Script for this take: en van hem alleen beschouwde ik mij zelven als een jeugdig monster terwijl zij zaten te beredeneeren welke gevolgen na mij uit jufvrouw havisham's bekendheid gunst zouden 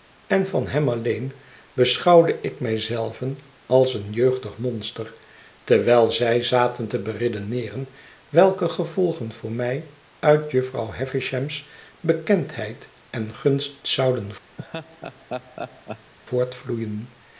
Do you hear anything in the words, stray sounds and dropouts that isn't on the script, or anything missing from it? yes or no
yes